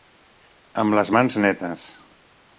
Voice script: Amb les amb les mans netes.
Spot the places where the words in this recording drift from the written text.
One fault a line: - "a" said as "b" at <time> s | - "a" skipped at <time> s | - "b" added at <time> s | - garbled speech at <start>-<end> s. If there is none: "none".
- "amb les" skipped at 1.1 s